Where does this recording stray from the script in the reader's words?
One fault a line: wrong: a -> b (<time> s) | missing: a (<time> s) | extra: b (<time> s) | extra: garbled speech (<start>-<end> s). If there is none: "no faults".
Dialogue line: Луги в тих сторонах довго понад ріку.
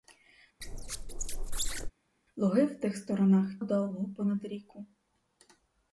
no faults